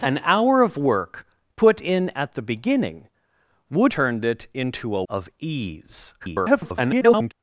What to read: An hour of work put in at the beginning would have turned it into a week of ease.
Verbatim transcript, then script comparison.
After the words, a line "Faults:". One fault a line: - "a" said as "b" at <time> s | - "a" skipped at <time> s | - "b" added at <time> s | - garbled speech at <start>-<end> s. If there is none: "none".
An hour of work put in at the beginning would turned it into a of ease. [garbled]
Faults:
- "have" skipped at 3.9 s
- "week" skipped at 5.0 s
- garbled speech at 6.2-7.3 s